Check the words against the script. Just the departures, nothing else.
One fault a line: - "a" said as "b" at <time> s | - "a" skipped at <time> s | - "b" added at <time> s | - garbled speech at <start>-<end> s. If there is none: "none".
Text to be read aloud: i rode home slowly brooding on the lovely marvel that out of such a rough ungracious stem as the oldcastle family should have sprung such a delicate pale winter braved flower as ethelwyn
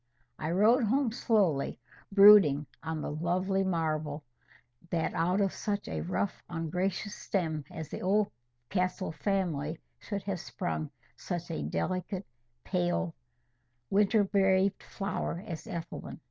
none